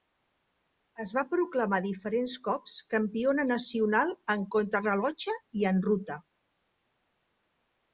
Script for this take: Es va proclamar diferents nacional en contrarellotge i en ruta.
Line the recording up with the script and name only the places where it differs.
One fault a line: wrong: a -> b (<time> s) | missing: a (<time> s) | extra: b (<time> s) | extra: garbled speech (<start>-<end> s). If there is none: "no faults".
extra: cops campiona (2.5 s)